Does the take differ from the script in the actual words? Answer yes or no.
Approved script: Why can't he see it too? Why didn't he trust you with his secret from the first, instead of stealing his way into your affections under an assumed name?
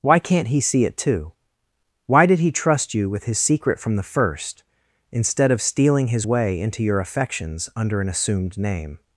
yes